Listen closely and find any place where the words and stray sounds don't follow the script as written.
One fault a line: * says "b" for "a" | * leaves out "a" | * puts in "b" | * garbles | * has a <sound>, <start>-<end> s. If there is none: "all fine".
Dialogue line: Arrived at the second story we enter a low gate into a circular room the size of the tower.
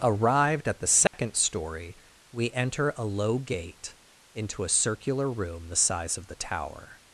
* has a dropout, 1.1-1.1 s